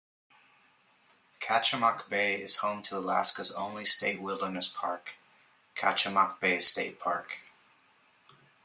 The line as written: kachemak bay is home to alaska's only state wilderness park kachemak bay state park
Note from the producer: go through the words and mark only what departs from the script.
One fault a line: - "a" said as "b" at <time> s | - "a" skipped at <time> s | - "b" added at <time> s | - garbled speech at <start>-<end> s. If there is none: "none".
none